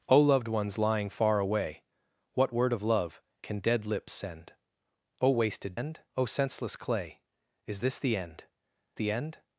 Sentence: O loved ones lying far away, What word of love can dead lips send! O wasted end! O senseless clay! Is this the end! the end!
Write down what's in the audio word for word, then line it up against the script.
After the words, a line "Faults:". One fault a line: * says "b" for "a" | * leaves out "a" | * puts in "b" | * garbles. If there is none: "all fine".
O loved ones lying far away, What word of love can dead lips send! O wasted end! O senseless clay! Is this the end! the end!
Faults:
all fine